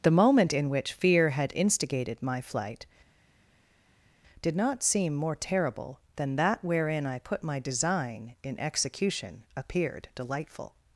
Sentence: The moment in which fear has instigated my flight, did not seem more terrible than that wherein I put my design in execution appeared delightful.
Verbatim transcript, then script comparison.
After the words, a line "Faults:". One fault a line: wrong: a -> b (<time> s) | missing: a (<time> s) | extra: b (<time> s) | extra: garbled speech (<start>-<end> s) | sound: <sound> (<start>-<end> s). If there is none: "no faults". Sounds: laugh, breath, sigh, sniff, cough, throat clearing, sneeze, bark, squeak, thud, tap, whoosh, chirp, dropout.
The moment in which fear had instigated my flight, did not seem more terrible than that wherein I put my design in execution appeared delightful.
Faults:
wrong: has -> had (1.3 s)